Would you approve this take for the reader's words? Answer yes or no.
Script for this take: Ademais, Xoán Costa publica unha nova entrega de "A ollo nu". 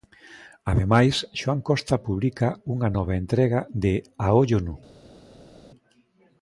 yes